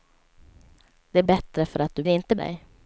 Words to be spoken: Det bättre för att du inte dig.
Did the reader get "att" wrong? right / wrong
right